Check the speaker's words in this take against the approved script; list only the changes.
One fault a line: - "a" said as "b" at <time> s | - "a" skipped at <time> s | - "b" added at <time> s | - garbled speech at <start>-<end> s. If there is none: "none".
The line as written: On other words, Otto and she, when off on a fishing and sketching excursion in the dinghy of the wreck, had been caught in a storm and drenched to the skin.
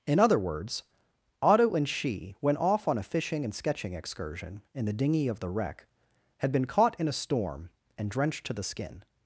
- "On" said as "In" at 0.1 s